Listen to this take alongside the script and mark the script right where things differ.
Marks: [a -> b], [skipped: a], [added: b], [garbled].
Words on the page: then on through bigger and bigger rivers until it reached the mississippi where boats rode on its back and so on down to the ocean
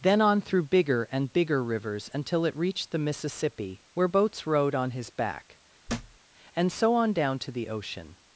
then on through bigger and bigger rivers until it reached the mississippi where boats rode on [its -> his] back and so on down to the ocean